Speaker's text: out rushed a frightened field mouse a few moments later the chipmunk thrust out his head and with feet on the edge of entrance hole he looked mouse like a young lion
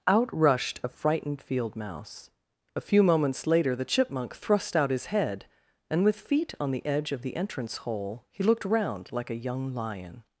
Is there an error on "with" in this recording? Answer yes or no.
no